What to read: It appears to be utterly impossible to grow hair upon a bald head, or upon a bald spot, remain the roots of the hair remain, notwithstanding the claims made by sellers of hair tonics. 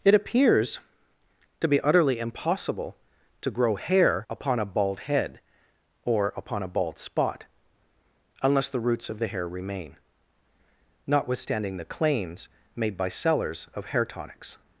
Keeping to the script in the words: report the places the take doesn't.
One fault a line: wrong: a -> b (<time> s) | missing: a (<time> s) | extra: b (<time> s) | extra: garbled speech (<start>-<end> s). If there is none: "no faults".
wrong: remain -> unless (8.4 s)